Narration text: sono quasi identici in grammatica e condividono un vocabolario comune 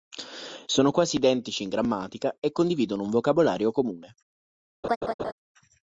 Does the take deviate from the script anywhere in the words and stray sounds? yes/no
yes